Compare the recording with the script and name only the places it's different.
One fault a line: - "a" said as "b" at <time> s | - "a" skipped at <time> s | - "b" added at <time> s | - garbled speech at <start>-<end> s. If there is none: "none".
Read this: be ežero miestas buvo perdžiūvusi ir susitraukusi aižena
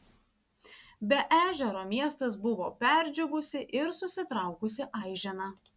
none